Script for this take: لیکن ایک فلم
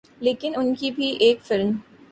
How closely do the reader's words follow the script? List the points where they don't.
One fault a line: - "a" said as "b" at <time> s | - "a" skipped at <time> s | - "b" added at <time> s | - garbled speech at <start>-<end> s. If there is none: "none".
- "ان کی بھی" added at 0.5 s